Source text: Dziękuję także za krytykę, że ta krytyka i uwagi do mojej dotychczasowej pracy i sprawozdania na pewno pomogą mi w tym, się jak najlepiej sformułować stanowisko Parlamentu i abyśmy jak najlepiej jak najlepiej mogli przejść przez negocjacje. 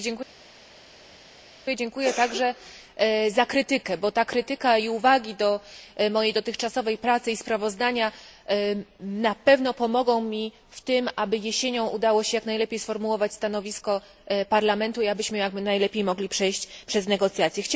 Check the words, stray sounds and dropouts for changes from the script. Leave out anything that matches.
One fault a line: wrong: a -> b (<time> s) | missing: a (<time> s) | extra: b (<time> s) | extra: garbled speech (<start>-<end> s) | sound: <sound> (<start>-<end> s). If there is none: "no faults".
wrong: że -> bo (4.0 s)
extra: aby jesienią udało (11.2 s)
missing: jak najlepiej (16.0 s)